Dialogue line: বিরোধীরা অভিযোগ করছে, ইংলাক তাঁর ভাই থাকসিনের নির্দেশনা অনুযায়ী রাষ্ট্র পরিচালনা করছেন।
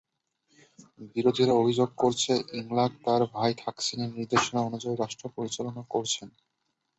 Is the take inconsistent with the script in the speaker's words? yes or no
no